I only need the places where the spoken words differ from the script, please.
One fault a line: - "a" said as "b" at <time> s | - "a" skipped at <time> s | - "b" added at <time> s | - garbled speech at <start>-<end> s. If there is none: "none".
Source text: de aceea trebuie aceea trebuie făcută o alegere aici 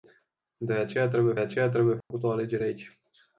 none